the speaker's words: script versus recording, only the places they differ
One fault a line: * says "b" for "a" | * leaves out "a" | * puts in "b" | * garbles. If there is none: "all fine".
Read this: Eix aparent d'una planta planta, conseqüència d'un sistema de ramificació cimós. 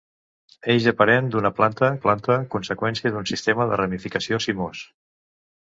all fine